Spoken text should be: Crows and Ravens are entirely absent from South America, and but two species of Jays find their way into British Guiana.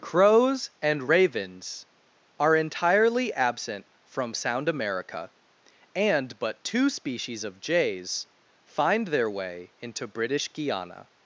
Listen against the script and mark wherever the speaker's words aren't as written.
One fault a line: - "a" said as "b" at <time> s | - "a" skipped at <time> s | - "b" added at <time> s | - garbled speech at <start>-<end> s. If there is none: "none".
- "South" said as "Sound" at 4.3 s